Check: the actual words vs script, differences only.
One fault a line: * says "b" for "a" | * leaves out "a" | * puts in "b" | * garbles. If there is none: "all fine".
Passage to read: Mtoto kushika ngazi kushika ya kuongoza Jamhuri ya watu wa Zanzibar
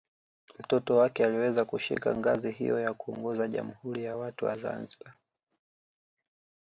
* puts in "wake aliweza"
* says "hiyo" for "kushika"